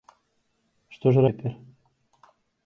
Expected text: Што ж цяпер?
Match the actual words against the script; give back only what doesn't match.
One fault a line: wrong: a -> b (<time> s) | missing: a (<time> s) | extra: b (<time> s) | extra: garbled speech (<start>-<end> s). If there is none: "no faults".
no faults